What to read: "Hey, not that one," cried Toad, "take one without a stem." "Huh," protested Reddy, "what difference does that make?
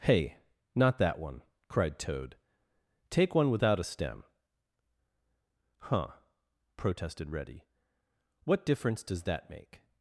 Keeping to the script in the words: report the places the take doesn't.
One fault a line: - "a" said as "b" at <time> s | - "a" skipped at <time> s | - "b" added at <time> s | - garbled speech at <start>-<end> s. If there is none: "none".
none